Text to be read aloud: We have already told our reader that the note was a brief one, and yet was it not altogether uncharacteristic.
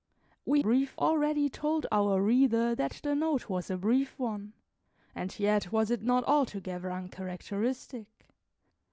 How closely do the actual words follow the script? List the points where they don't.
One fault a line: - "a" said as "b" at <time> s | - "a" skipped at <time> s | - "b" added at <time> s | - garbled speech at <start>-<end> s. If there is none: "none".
- "have" said as "brief" at 0.6 s